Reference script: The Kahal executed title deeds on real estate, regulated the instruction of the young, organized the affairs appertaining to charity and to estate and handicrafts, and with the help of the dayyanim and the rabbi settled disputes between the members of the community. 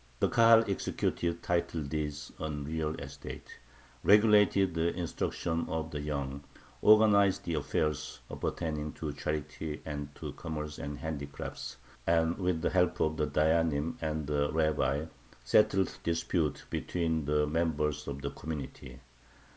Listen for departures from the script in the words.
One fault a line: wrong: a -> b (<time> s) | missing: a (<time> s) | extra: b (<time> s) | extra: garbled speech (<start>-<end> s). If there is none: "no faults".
wrong: estate -> commerce (10.3 s)